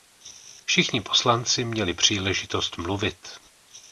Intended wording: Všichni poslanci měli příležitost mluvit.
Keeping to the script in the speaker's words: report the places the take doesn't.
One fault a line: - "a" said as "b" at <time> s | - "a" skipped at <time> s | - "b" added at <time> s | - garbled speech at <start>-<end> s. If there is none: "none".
none